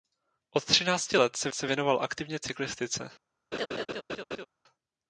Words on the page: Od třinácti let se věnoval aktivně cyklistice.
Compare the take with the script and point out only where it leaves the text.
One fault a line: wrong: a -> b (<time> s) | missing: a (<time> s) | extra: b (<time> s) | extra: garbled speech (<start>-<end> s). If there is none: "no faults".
extra: se (1.5 s)